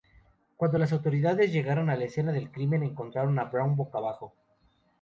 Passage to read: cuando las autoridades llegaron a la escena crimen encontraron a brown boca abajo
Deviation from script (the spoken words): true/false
true